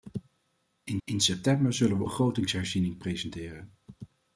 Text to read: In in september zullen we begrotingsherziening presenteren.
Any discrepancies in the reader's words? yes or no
no